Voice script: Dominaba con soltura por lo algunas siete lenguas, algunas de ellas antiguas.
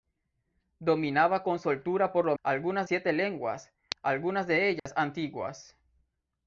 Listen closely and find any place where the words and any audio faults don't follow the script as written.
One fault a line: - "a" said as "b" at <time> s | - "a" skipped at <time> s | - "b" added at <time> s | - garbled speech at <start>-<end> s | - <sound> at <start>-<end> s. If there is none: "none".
- dropout at 4.8-4.9 s